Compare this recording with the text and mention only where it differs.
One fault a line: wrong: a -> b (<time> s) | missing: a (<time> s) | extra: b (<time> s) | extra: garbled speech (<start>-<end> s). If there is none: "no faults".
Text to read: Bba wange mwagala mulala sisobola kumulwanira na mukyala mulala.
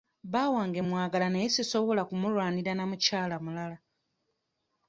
wrong: mulala -> naye (1.3 s)